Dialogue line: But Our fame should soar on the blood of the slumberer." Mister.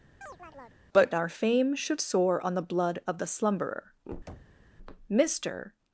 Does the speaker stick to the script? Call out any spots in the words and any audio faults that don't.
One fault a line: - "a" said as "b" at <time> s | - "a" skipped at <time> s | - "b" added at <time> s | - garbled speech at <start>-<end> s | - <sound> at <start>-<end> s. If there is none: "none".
- chirp at 0.2-0.8 s
- thud at 4.3-4.6 s